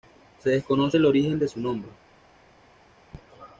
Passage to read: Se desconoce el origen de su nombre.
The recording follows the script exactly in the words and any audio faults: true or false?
true